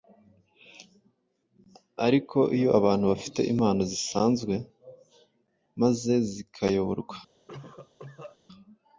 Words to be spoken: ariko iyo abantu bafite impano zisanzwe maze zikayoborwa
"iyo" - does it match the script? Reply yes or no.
yes